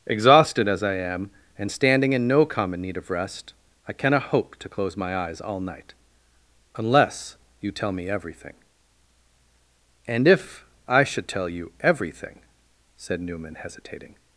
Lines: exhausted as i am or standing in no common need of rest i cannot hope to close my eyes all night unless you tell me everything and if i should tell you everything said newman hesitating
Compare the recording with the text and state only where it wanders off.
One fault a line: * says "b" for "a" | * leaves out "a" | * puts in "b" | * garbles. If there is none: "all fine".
* says "and" for "or"